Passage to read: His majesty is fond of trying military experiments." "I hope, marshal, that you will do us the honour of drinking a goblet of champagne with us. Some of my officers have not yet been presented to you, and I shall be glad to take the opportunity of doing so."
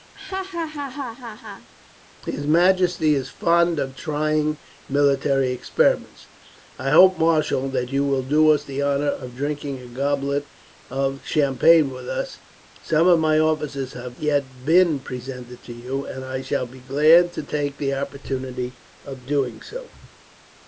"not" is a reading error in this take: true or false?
true